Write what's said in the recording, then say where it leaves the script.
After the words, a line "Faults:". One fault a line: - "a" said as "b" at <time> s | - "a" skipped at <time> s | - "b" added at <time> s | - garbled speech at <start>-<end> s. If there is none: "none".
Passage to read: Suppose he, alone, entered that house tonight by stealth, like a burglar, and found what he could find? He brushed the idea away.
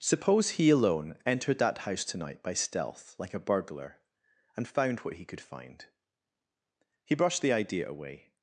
Suppose he, alone, entered that house tonight by stealth, like a burglar, and found what he could find? He brushed the idea away.
Faults:
none